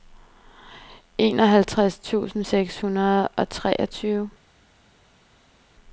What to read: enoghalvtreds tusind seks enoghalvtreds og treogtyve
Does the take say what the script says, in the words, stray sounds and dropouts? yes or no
no